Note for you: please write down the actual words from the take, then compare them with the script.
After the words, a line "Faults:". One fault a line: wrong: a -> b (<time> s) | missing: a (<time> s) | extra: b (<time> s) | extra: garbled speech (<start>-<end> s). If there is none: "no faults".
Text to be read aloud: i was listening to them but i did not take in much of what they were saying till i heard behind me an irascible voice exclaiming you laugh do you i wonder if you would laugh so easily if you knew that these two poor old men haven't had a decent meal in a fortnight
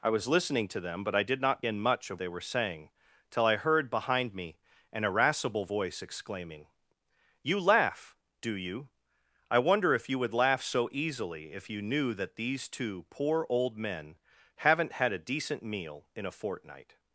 i was listening to them but i did not in much of they were saying till i heard behind me an irascible voice exclaiming you laugh do you i wonder if you would laugh so easily if you knew that these two poor old men haven't had a decent meal in a fortnight
Faults:
missing: take (1.6 s)
missing: what (2.2 s)